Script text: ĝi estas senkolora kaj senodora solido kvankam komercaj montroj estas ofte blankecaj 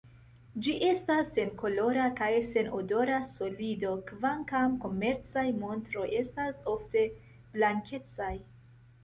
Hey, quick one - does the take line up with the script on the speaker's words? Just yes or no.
yes